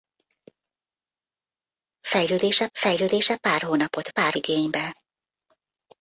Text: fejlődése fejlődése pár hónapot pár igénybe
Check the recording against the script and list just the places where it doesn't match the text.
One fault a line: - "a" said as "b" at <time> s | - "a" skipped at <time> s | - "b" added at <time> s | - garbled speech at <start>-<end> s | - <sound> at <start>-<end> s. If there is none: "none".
none